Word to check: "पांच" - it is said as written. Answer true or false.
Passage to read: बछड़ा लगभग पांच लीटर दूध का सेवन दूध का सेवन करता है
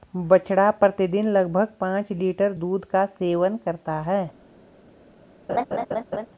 true